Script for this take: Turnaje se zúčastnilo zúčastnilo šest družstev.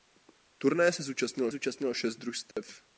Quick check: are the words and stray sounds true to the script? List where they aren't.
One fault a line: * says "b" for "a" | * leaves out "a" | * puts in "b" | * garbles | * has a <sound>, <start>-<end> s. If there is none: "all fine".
* has a dropout, 2.5-2.6 s